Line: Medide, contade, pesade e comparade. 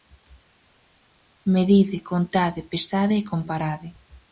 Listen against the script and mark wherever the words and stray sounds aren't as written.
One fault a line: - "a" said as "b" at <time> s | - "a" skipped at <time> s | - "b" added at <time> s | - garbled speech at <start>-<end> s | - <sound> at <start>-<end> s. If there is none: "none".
none